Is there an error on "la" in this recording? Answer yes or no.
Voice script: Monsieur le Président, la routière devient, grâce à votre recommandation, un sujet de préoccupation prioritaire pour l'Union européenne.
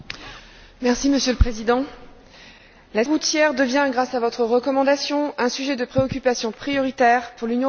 no